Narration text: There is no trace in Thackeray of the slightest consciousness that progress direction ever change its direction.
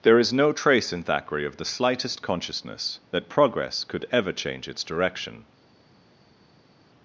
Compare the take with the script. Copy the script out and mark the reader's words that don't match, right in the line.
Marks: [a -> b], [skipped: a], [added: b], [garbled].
There is no trace in Thackeray of the slightest consciousness that progress [direction -> could] ever change its direction.